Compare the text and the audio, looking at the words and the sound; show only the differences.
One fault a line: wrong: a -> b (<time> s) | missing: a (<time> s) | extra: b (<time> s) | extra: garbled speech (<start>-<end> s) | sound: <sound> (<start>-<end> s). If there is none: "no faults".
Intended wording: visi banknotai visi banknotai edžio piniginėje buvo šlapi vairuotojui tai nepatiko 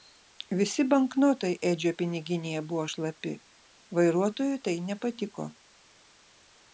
missing: visi banknotai (1.5 s)